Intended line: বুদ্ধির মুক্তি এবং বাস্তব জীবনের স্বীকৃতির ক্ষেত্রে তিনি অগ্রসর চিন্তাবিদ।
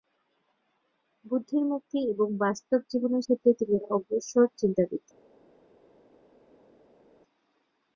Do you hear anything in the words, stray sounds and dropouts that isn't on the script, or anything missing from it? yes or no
yes